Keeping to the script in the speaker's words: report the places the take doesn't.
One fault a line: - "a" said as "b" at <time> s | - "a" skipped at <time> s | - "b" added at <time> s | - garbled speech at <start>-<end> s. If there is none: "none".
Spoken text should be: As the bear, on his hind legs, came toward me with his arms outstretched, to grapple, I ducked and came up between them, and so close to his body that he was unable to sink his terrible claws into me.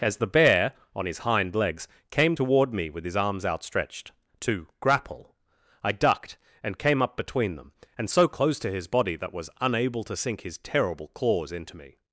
- "he" skipped at 9.3 s